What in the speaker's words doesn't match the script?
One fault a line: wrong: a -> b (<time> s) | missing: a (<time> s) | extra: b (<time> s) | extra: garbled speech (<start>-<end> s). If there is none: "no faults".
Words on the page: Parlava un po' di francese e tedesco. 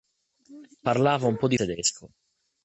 missing: francese e (1.6 s)